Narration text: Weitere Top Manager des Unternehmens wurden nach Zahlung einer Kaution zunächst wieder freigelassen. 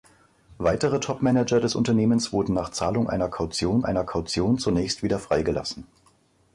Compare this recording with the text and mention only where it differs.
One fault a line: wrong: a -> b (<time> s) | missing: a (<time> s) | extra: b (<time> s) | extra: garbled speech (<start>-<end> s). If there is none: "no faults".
extra: einer Kaution (3.8 s)